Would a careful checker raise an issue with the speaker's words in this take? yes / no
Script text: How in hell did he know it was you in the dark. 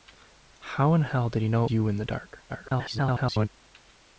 yes